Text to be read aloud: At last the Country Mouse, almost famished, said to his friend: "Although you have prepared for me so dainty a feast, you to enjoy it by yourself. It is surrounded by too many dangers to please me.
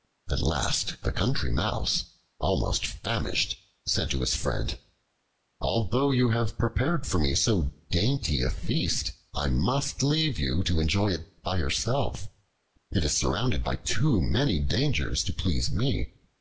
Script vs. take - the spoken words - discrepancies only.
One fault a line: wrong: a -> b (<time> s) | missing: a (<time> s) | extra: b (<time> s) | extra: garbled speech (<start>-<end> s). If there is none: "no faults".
extra: I must leave (9.3 s)